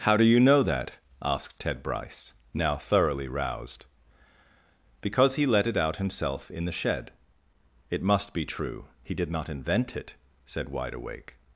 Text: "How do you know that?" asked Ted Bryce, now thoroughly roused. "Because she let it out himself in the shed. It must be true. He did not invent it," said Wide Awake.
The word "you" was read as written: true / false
true